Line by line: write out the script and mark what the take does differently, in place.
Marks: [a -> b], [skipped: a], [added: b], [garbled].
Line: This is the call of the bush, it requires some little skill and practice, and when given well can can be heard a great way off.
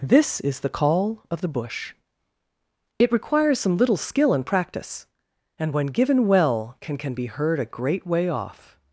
This is the call of the bush, it requires some little skill and practice, and when given well can can be heard a great way off.